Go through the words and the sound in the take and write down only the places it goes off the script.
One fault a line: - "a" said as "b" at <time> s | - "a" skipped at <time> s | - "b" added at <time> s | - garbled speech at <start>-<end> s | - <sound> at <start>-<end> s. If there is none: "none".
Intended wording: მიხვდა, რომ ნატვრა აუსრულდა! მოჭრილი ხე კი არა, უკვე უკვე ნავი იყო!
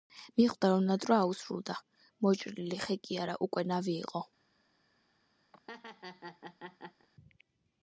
- "უკვე" skipped at 3.7 s
- laugh at 5.5-7.1 s